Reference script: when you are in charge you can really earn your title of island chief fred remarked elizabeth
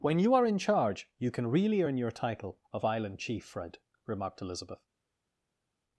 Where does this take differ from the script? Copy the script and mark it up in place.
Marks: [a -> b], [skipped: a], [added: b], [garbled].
when you are in charge you can really earn your title of island chief fred remarked elizabeth